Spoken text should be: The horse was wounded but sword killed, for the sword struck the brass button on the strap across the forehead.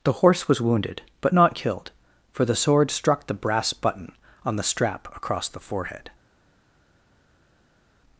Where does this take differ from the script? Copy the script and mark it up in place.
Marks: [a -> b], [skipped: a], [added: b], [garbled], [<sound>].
The horse was wounded but [sword -> not] killed, for the sword struck the brass button on the strap across the forehead.